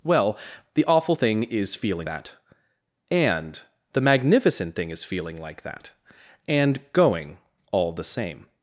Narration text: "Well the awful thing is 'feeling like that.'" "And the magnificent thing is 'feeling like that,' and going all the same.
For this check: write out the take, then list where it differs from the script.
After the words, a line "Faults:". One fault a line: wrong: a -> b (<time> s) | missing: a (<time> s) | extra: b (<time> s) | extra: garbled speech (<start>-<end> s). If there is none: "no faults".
"Well the awful thing is 'feeling that.'" "And the magnificent thing is 'feeling like that,' and going all the same.
Faults:
missing: like (2.1 s)